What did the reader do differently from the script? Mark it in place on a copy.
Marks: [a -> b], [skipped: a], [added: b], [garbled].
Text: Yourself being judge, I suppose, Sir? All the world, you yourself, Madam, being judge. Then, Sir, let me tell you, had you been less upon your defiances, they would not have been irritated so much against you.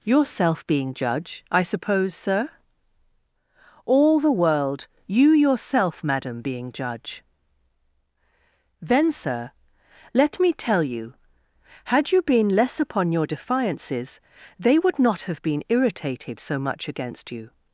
Yourself being judge, I suppose, Sir? All the world, you yourself, Madam, being judge. Then, Sir, let me tell you, had you been less upon your defiances, they would not have been irritated so much against you.